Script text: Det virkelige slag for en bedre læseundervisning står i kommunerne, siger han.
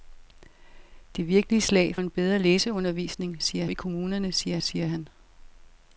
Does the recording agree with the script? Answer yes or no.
no